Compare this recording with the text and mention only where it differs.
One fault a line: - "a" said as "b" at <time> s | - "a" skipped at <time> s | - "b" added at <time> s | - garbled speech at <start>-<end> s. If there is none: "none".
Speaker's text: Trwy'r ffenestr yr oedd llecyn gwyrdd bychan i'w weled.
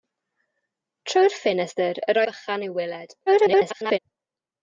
- "oedd llecyn gwyrdd" skipped at 2.2 s
- garbled speech at 3.3-4.0 s